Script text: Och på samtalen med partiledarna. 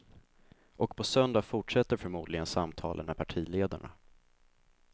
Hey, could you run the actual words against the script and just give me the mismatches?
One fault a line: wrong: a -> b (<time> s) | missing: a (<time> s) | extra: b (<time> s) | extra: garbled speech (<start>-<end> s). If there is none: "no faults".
extra: söndag fortsätter förmodligen (1.0 s)